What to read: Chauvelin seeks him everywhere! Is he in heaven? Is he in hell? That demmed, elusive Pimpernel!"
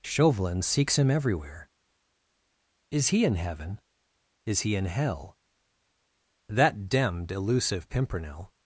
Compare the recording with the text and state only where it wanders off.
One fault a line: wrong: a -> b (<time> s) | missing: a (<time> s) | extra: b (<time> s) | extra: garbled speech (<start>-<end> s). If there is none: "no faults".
no faults